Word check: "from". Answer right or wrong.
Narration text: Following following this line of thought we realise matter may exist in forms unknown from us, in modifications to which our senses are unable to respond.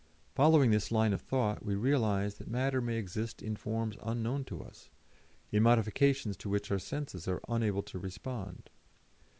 wrong